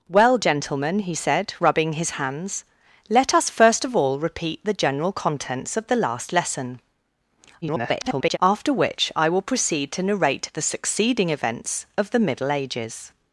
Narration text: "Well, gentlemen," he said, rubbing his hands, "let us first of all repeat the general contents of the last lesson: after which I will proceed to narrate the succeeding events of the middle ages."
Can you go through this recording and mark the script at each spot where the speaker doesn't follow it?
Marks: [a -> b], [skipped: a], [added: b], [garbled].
"Well, gentlemen," he said, rubbing his hands, "let us first of all repeat the general contents of the last lesson: [garbled] after which I will proceed to narrate the succeeding events of the middle ages."